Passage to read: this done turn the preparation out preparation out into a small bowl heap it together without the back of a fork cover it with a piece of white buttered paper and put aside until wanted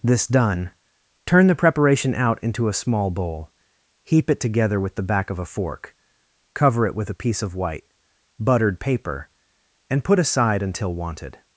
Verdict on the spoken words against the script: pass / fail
fail